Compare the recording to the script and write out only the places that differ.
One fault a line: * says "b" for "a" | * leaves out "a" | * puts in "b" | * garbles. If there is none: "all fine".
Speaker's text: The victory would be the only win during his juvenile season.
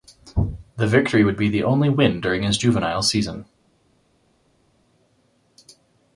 all fine